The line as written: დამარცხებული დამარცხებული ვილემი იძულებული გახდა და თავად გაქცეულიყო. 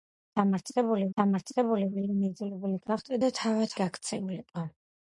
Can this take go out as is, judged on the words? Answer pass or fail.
pass